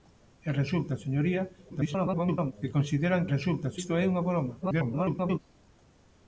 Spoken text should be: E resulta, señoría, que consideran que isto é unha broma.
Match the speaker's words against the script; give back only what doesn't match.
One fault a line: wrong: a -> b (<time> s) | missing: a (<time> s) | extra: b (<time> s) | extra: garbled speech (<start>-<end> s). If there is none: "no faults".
extra: garbled speech (1.7-2.5 s)
wrong: que -> resulta (3.3 s)
extra: garbled speech (4.6-5.4 s)